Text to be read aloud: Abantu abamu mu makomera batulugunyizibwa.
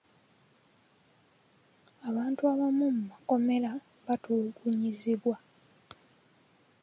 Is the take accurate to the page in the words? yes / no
yes